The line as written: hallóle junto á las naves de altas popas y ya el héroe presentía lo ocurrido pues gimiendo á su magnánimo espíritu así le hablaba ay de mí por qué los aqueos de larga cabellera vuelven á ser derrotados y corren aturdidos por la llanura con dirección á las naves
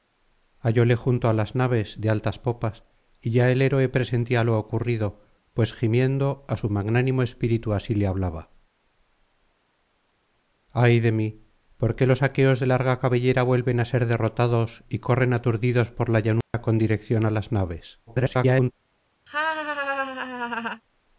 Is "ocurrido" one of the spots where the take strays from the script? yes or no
no